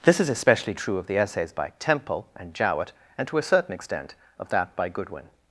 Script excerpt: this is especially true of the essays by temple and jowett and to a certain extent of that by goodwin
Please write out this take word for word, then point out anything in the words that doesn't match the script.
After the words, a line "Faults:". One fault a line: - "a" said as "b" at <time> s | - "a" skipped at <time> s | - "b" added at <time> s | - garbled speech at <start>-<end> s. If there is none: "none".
this is especially true of the essays by temple and jowett and to a certain extent of that by goodwin
Faults:
none